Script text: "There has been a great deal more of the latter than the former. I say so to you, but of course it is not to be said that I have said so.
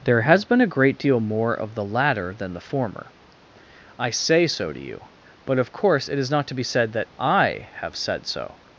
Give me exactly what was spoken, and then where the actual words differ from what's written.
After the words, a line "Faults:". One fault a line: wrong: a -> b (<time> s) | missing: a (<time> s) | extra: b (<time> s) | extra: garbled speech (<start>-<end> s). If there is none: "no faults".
"There has been a great deal more of the latter than the former. I say so to you, but of course it is not to be said that I have said so.
Faults:
no faults